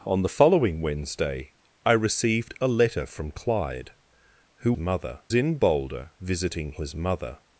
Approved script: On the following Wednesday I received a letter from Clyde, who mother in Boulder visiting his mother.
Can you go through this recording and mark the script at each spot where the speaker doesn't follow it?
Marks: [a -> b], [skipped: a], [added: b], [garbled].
On the following Wednesday I received a letter from Clyde, who mother in Boulder visiting his mother.